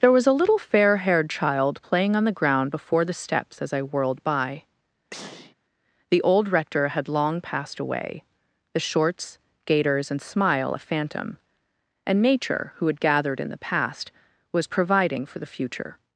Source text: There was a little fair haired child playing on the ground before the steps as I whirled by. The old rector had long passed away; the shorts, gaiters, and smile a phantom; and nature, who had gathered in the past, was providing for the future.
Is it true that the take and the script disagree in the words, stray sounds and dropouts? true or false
true